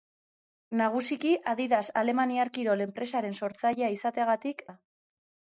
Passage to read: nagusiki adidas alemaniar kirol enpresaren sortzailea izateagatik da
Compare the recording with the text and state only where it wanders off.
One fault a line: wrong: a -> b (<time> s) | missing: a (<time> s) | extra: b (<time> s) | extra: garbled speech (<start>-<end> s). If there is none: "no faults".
no faults